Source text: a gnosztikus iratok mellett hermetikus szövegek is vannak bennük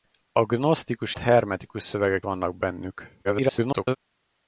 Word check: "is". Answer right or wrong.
wrong